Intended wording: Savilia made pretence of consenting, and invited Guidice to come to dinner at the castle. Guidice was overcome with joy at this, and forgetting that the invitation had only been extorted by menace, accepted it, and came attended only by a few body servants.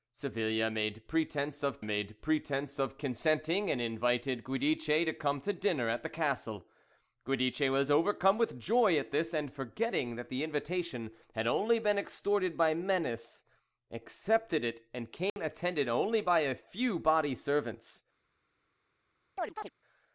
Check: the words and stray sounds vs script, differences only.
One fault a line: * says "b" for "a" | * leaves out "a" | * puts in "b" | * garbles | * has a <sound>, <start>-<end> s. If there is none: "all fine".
* puts in "made pretence of"
* has a dropout, 15.3-15.4 s
* has a chirp, 19.4-19.7 s